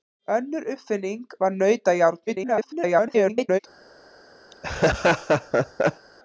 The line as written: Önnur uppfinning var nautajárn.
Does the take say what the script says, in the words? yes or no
no